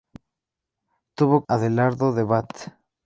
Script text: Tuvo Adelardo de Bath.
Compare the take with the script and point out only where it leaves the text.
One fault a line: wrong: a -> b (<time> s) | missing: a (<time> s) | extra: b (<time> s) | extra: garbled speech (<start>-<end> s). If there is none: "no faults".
no faults